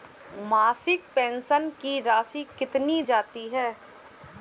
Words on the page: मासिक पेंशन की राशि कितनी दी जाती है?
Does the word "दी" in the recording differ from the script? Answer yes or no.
yes